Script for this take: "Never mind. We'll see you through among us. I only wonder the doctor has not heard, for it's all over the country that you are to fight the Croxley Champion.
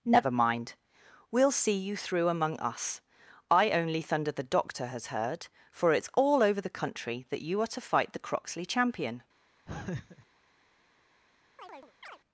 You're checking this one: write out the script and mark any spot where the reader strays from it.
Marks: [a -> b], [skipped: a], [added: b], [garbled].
"Never mind. We'll see you through among us. I only [wonder -> thunder] the doctor has [skipped: not] heard, for it's all over the country that you are to fight the Croxley Champion.